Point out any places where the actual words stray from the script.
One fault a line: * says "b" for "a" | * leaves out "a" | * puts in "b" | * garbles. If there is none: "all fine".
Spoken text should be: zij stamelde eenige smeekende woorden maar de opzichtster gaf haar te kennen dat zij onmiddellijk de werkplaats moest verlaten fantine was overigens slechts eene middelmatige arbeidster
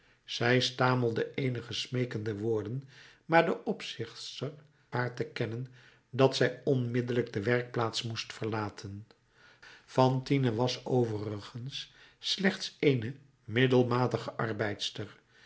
* leaves out "gaf"